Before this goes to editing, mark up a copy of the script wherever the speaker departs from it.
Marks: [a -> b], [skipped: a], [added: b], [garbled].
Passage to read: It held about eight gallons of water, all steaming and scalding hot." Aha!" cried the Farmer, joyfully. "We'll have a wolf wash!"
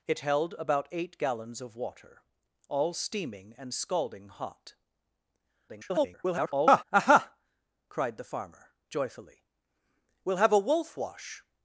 It held about eight gallons of water, all steaming and scalding hot." [garbled] Aha!" cried the Farmer, joyfully. "We'll have a wolf wash!"